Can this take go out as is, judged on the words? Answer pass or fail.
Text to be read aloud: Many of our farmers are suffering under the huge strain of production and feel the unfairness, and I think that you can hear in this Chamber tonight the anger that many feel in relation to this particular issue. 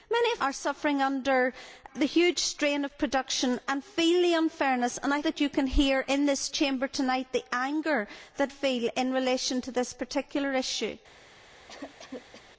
fail